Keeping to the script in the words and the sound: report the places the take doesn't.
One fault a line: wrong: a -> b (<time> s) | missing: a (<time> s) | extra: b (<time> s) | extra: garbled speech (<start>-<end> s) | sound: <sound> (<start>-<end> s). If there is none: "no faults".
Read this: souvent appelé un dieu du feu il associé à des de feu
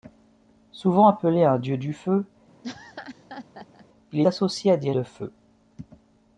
sound: laugh (2.6-3.9 s)